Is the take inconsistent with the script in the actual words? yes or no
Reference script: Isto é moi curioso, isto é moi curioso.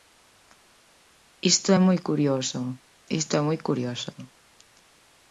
no